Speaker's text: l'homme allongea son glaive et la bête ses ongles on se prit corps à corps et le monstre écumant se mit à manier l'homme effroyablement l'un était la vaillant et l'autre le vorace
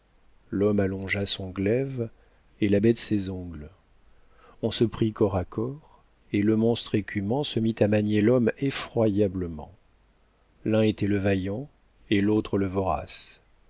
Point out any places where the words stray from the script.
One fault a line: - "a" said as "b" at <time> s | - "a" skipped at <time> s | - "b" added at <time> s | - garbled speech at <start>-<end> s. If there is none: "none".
- "la" said as "le" at 11.1 s